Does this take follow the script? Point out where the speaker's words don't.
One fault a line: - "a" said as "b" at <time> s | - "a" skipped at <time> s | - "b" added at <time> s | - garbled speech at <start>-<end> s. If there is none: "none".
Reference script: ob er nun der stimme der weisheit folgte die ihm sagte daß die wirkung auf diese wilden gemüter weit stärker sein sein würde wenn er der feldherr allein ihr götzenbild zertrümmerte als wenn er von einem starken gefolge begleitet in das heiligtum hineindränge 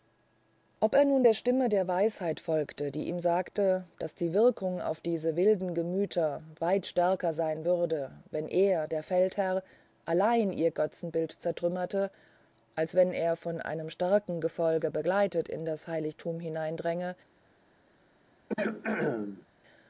- "sein" skipped at 7.7 s